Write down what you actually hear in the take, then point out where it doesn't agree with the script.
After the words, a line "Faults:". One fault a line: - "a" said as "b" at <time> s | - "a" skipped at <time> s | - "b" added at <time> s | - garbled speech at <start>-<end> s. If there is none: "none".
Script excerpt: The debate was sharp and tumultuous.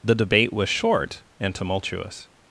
The debate was short and tumultuous.
Faults:
- "sharp" said as "short" at 0.7 s